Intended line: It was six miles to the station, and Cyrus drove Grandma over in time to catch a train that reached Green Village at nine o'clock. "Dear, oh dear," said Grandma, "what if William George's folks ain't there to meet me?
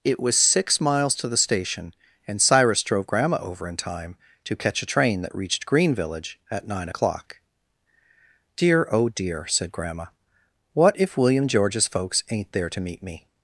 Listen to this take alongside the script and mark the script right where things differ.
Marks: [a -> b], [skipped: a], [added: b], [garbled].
It was six miles to the station, and Cyrus drove Grandma over in time to catch a train that reached Green Village at nine o'clock. "Dear, oh dear," said Grandma, "what if William George's folks ain't there to meet me?